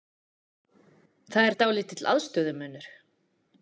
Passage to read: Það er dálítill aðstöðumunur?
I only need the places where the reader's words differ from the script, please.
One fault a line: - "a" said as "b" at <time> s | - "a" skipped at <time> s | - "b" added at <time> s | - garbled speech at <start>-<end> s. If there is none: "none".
none